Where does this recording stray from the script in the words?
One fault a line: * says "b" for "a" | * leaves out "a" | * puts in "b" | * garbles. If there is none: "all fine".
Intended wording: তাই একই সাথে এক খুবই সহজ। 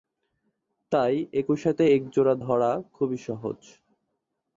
* puts in "জোড়া ধরা"